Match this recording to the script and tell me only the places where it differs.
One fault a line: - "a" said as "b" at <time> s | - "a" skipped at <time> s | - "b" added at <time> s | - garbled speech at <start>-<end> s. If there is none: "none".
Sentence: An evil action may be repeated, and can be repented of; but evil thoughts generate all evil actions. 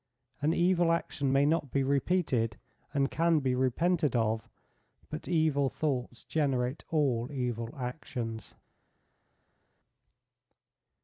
- "not" added at 1.5 s